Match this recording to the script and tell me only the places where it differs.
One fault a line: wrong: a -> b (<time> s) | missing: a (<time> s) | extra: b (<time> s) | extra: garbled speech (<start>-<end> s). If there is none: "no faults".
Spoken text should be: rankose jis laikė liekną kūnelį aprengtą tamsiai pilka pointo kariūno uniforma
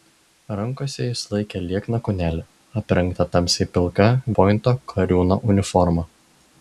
no faults